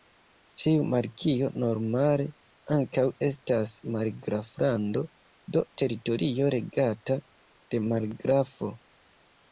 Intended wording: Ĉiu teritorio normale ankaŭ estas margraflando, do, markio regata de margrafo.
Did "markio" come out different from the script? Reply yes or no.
yes